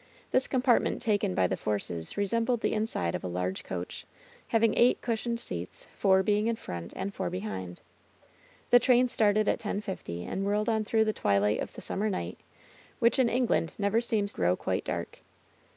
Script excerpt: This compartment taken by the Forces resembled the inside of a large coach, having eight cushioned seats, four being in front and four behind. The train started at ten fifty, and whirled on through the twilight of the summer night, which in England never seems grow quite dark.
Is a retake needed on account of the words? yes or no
no